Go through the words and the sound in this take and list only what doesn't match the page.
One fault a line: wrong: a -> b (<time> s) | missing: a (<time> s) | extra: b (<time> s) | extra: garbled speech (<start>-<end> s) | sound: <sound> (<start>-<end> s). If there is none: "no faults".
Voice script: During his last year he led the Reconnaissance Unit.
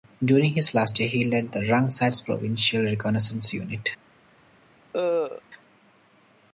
extra: Rung Sat's Provincial (1.7 s)
sound: cough (4.9-5.4 s)